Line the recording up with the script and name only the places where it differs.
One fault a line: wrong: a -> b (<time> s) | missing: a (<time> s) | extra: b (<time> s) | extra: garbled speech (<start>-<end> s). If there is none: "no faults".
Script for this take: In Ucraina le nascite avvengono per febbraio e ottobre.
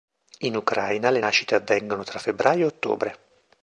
wrong: per -> tra (2.0 s)